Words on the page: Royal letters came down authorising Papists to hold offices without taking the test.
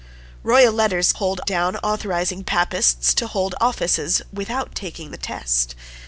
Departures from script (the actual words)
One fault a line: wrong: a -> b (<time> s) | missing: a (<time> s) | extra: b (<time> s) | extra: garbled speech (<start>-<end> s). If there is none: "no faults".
wrong: came -> hold (1.1 s)